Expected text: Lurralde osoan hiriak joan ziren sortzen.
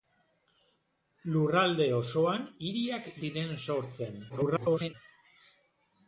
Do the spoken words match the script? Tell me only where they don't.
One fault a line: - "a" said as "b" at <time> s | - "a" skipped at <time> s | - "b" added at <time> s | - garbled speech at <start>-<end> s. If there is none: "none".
- "joan" skipped at 3.1 s
- garbled speech at 4.3-4.9 s